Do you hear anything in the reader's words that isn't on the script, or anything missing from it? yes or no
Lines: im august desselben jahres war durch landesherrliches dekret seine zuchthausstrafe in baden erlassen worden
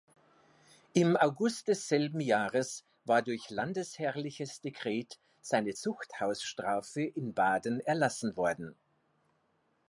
no